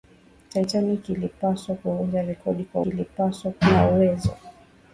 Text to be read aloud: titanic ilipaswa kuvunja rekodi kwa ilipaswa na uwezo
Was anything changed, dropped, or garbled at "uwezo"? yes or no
no